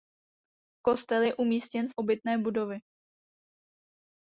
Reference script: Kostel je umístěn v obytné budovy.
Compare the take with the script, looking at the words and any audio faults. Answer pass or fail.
pass